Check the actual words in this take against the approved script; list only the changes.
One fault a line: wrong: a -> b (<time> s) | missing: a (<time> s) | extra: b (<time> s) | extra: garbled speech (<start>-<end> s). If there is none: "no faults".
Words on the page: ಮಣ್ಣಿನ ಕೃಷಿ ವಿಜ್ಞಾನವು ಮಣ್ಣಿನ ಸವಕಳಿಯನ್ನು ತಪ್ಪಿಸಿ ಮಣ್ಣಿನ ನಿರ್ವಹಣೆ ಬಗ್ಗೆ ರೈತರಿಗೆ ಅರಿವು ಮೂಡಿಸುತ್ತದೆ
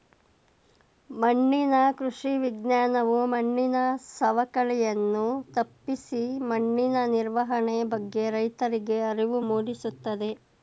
no faults